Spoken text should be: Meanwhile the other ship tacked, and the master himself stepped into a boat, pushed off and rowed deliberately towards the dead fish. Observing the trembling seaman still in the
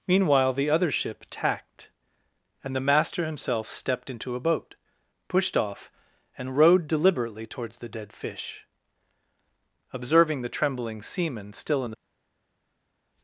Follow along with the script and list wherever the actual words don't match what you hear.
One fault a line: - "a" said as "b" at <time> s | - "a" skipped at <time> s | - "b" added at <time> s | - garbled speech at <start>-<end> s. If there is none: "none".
none